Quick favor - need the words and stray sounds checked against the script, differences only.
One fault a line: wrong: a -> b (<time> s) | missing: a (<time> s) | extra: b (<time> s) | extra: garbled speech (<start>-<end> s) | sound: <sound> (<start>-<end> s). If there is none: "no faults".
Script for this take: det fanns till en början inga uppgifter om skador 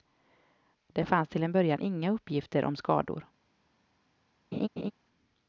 sound: laugh (4.5-4.9 s)